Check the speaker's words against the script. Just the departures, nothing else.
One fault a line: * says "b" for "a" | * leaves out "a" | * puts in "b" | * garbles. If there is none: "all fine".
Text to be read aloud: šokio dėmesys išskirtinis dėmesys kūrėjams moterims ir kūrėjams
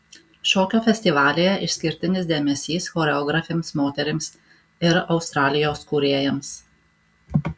* says "festivalyje" for "dėmesys"
* says "choreografėms" for "kūrėjams"
* puts in "australijos"